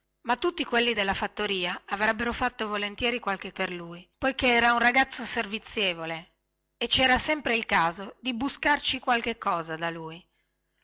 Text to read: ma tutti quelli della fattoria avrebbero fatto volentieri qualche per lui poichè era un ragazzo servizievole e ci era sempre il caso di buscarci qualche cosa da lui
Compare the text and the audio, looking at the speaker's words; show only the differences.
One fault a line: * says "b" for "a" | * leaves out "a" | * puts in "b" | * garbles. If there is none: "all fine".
all fine